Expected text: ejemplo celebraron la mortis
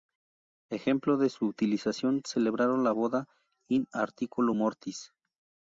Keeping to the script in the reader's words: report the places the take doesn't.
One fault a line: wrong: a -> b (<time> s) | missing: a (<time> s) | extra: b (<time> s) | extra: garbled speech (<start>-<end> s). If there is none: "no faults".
extra: de su utilización (1.2 s)
extra: boda in articulo (2.9 s)